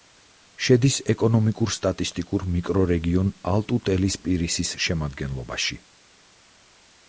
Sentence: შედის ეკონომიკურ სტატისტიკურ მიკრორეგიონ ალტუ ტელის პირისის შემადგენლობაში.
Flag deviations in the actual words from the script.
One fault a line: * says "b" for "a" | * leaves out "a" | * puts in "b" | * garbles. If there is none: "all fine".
all fine